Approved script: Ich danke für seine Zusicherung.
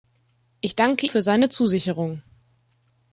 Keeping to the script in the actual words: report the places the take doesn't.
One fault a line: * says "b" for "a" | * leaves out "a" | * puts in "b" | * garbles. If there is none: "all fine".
all fine